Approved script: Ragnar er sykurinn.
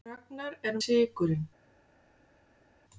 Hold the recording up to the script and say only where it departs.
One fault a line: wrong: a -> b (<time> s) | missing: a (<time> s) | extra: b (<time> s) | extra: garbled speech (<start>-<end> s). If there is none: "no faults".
no faults